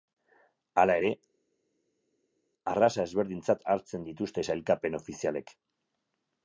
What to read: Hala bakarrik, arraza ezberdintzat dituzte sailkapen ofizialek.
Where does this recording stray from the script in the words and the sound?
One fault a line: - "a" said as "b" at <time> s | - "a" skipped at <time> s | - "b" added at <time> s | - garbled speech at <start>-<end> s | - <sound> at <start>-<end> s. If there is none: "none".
- "bakarrik" said as "ere" at 1.0 s
- "hartzen" added at 3.8 s